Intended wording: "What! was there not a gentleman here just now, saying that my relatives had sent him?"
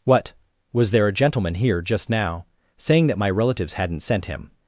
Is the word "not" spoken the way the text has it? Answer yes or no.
no